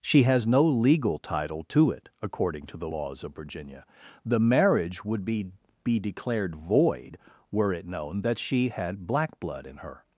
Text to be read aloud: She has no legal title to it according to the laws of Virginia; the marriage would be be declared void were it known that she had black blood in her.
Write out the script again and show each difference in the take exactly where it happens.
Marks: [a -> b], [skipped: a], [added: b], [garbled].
She has no legal title to it according to the laws of Virginia; the marriage would be be declared void were it known that she had black blood in her.